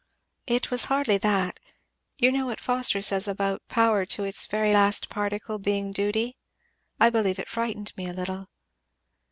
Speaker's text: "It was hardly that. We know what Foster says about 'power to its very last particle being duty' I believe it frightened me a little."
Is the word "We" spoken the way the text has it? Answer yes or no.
no